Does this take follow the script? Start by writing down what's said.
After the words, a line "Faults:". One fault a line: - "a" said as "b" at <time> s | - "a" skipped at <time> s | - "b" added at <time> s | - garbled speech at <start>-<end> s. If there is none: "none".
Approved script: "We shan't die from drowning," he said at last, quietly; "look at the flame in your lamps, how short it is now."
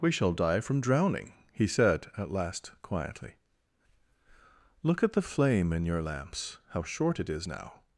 "We shall die from drowning," he said at last, quietly; "look at the flame in your lamps, how short it is now."
Faults:
- "shan't" said as "shall" at 0.1 s